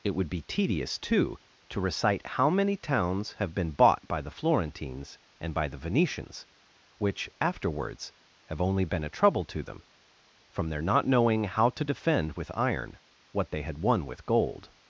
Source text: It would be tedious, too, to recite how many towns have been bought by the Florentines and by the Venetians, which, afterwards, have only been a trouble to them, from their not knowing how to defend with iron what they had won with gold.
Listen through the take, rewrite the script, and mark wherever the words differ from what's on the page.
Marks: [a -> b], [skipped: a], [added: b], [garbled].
It would be tedious, too, to recite how many towns have been bought by the Florentines and by the Venetians, which, afterwards, have only been a trouble to them, from their not knowing how to defend with iron what they had won with gold.